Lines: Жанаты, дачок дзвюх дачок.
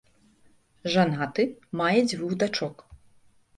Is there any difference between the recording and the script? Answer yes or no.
yes